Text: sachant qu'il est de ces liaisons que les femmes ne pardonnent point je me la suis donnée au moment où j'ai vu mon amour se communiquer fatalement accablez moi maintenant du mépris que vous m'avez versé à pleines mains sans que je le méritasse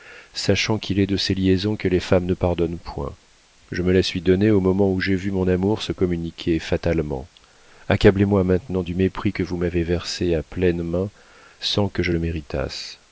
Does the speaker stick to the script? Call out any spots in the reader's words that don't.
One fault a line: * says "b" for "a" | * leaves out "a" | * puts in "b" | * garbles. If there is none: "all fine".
all fine